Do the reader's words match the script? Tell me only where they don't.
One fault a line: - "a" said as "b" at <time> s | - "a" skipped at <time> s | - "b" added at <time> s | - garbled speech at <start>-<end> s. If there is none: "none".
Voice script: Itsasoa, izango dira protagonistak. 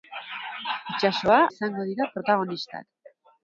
none